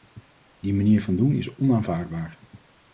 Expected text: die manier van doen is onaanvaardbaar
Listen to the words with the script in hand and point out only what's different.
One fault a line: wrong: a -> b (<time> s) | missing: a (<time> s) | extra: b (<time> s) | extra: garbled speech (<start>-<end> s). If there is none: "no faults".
no faults